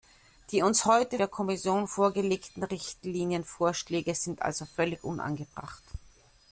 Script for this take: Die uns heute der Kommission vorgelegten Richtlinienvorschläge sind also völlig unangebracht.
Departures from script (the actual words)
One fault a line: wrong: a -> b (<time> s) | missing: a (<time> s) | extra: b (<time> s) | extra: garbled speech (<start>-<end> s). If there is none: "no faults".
no faults